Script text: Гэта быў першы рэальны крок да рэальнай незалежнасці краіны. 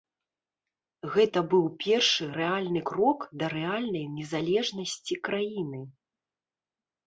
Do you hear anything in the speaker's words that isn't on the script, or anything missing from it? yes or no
no